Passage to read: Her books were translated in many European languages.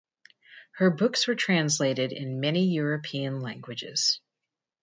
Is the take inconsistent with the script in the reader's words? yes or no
no